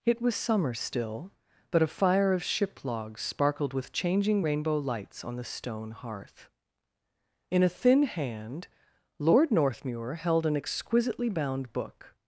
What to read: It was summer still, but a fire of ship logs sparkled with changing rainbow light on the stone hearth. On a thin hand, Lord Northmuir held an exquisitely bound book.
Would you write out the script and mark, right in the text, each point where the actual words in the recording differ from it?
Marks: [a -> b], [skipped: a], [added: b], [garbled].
It was summer still, but a fire of ship logs sparkled with changing rainbow [light -> lights] on the stone hearth. [On -> In] a thin hand, Lord Northmuir held an exquisitely bound book.